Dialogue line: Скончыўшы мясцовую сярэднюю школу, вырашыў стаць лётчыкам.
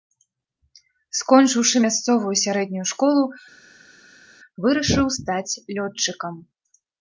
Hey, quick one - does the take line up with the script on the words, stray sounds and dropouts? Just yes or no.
yes